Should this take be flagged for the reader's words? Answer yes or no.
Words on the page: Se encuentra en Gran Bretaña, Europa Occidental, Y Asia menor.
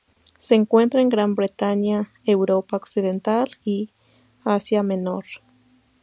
no